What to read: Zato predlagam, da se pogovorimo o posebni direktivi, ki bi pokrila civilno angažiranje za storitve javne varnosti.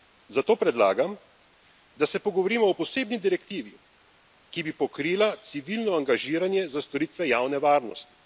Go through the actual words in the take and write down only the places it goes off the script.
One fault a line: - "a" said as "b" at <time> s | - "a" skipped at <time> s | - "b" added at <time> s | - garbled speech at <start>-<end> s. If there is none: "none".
none